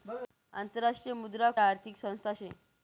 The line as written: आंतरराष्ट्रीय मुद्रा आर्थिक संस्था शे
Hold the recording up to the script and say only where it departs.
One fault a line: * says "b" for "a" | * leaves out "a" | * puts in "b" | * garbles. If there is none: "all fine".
all fine